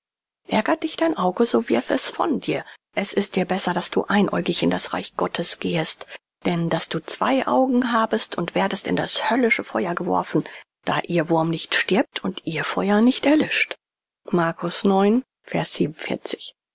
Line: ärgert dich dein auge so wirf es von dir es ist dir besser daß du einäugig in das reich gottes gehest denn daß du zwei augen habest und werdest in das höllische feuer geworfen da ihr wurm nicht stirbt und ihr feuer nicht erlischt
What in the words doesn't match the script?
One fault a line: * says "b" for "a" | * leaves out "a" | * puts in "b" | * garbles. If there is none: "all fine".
all fine